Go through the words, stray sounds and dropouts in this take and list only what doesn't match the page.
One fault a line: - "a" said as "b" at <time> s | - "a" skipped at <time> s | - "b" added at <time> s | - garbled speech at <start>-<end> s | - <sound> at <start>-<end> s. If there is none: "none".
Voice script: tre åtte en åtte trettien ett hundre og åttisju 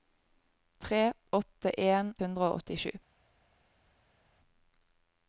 - "åtte trettien ett" skipped at 2.1 s